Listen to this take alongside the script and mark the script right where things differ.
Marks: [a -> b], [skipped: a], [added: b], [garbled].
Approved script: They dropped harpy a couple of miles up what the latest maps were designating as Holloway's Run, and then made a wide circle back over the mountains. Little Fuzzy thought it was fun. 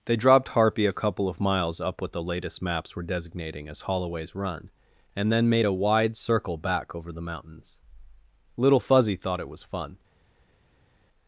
They dropped harpy a couple of miles up what the latest maps were designating as Holloway's Run, and then made a wide circle back over the mountains. Little Fuzzy thought it was fun.